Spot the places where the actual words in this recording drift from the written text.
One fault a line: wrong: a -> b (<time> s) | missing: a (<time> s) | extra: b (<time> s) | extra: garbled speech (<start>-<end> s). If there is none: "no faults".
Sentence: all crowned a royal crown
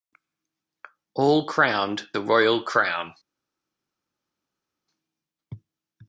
no faults